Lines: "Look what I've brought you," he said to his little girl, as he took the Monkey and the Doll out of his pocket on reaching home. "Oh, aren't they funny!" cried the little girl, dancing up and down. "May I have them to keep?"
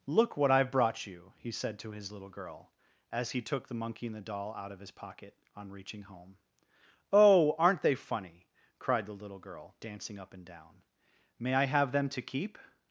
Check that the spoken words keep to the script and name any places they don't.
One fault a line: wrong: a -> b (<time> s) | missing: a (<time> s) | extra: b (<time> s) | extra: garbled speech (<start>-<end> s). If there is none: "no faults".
no faults